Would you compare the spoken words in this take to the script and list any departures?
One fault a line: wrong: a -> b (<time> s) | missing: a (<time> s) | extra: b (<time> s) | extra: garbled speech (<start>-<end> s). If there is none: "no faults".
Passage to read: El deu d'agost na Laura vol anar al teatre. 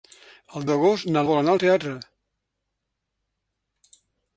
missing: deu (0.6 s)
missing: Laura (1.2 s)